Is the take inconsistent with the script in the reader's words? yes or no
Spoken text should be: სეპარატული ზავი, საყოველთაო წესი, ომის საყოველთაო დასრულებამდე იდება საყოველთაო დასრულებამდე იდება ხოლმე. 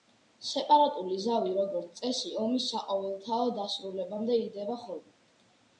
yes